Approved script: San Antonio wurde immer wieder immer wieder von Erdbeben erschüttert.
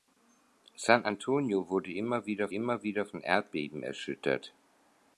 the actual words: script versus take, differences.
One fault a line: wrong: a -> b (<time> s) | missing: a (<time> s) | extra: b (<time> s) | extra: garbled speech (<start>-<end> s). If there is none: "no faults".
no faults